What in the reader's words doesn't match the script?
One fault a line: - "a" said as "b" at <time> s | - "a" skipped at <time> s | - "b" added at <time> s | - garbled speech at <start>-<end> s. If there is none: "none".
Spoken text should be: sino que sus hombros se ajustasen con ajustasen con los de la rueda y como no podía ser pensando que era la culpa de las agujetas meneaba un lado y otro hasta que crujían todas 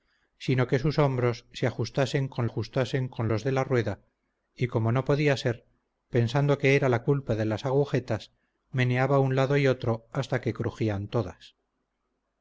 none